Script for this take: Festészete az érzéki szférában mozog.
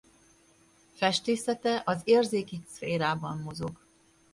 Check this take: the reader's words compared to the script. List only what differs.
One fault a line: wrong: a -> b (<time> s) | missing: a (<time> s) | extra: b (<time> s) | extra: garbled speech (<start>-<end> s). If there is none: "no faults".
no faults